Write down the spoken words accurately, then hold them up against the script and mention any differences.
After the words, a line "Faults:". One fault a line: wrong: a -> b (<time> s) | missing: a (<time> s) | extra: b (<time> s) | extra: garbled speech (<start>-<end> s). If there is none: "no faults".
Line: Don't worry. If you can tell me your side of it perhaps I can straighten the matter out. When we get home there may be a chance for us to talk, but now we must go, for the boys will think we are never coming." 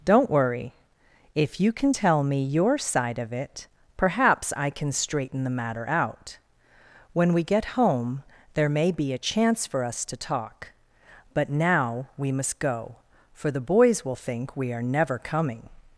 Don't worry. If you can tell me your side of it perhaps I can straighten the matter out. When we get home there may be a chance for us to talk, but now we must go, for the boys will think we are never coming."
Faults:
no faults